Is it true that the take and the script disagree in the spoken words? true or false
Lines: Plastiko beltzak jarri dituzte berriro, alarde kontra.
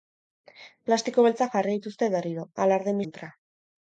false